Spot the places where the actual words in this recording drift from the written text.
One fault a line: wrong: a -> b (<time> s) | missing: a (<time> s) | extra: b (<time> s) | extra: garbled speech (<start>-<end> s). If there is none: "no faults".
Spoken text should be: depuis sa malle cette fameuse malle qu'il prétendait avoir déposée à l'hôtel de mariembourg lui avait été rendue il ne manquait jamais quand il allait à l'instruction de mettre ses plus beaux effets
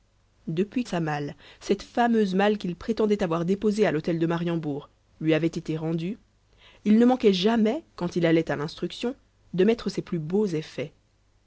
no faults